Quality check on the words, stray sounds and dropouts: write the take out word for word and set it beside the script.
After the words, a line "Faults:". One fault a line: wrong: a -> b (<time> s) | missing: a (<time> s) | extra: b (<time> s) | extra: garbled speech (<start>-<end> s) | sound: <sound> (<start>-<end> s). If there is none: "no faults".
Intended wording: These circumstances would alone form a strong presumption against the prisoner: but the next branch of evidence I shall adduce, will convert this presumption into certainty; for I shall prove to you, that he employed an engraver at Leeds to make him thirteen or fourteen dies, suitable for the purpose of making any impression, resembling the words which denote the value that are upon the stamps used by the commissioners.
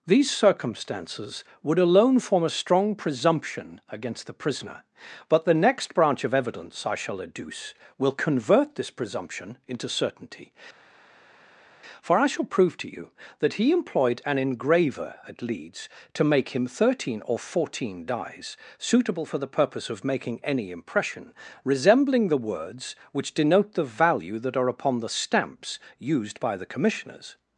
These circumstances would alone form a strong presumption against the prisoner: but the next branch of evidence I shall adduce, will convert this presumption into certainty; for I shall prove to you, that he employed an engraver at Leeds to make him thirteen or fourteen dies, suitable for the purpose of making any impression, resembling the words which denote the value that are upon the stamps used by the commissioners.
Faults:
no faults